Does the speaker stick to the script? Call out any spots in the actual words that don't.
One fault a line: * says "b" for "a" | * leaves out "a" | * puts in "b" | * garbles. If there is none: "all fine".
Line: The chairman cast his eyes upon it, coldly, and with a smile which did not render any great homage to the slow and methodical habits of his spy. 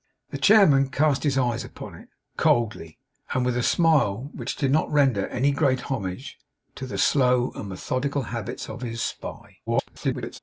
* garbles